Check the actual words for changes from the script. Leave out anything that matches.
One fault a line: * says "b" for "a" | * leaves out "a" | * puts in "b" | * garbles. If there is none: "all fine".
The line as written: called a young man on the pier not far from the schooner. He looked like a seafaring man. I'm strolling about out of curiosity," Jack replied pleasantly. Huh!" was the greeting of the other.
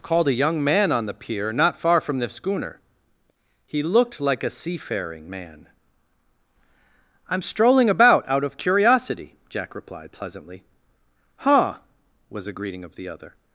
* says "a" for "the"